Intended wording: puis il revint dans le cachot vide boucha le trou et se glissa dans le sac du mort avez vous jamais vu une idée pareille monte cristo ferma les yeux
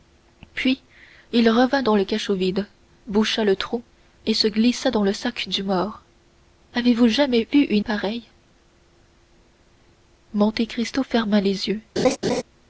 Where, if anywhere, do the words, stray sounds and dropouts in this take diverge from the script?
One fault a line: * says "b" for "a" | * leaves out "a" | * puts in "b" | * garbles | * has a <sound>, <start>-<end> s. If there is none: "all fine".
* leaves out "idée"
* has a laugh, 12.0-12.4 s